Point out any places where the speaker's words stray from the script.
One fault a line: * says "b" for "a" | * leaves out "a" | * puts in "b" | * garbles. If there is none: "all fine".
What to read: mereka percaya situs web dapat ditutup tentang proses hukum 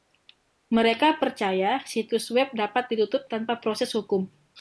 * says "tanpa" for "tentang"